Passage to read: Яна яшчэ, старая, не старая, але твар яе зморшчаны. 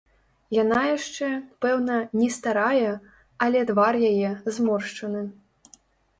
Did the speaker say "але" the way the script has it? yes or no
yes